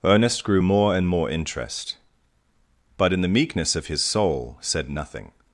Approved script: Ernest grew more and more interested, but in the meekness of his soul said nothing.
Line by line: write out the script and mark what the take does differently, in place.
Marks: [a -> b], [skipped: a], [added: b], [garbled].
Ernest grew more and more [interested, -> interest] but in the meekness of his soul said nothing.